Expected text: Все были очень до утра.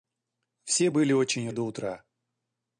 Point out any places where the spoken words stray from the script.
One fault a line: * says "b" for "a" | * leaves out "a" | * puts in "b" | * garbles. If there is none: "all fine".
all fine